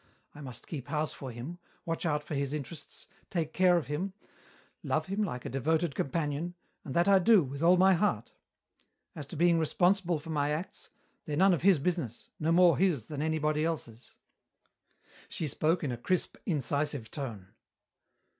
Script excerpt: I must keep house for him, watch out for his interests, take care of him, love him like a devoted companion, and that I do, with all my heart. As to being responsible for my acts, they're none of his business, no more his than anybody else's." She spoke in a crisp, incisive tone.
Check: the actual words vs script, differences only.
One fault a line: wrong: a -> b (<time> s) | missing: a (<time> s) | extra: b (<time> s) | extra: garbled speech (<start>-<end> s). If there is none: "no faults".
no faults